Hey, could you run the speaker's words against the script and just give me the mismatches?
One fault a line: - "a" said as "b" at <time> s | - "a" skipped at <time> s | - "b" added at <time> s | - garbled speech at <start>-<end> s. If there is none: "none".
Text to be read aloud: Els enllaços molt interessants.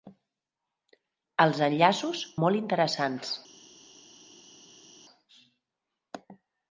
none